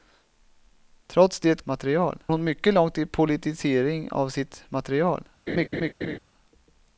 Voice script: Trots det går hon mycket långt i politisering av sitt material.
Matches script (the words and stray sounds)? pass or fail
fail